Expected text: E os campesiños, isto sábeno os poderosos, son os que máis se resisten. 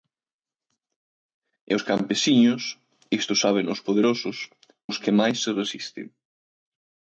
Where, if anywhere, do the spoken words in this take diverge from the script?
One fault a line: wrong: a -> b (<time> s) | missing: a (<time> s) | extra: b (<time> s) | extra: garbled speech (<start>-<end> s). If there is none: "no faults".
missing: son (4.4 s)